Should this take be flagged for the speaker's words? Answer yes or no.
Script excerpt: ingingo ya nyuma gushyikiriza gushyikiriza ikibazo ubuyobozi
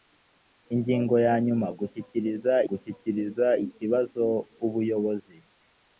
no